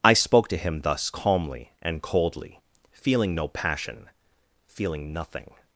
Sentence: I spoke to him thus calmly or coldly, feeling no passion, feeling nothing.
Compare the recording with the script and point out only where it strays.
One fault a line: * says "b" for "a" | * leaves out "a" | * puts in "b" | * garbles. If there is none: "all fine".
* says "and" for "or"